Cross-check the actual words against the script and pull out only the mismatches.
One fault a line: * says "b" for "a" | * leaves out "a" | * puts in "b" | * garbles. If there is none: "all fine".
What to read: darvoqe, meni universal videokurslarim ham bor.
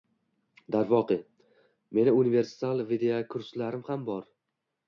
all fine